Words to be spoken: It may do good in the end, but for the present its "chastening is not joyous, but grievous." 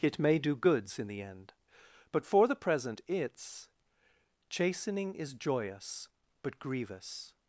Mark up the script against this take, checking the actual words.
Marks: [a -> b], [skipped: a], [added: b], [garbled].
It may do [good -> goods] in the end, but for the present its "chastening is [skipped: not] joyous, but grievous."